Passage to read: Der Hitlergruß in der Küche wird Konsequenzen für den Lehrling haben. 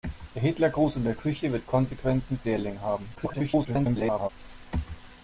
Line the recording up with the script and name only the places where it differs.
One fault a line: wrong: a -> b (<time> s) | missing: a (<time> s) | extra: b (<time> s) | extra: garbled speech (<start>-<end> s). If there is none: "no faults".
missing: den (2.5 s)
extra: garbled speech (3.1-4.3 s)